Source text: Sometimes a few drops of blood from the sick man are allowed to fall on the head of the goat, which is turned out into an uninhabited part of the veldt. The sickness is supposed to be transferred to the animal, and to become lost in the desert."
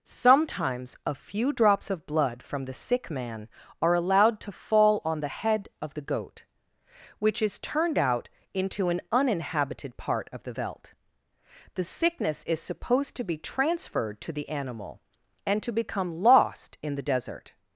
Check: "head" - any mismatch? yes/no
no